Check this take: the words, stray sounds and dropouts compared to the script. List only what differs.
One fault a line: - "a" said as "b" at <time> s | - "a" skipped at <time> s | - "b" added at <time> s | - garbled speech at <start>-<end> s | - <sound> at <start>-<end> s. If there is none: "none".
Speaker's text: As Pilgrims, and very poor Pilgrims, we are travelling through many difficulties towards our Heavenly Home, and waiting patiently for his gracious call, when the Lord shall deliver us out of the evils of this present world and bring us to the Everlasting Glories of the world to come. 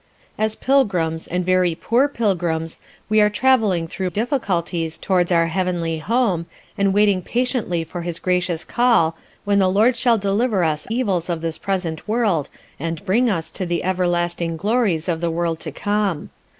- "many" skipped at 4.1 s
- "out of the" skipped at 10.9 s